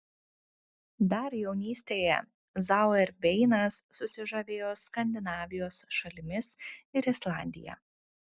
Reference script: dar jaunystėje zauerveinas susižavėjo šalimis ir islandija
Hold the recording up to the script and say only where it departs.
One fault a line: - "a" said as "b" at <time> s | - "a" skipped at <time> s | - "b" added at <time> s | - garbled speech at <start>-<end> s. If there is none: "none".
- "skandinavijos" added at 4.8 s